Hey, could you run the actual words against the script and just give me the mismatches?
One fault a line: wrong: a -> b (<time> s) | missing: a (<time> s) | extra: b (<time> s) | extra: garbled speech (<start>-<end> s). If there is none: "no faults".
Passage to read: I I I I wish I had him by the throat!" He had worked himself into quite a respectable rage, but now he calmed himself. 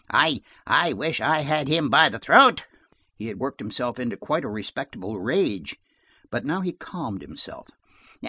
missing: I I (0.9 s)